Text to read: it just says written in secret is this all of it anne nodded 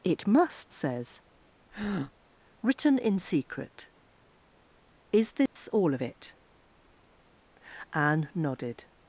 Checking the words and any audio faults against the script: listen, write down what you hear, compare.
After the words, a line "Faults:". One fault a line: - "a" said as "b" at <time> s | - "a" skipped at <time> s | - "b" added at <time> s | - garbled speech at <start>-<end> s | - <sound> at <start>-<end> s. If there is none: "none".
it must says written in secret is this all of it anne nodded
Faults:
- "just" said as "must" at 0.2 s
- breath at 1.7-2.1 s
- dropout at 5.5-5.6 s